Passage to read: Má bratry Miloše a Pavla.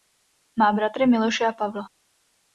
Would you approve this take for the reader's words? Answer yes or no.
yes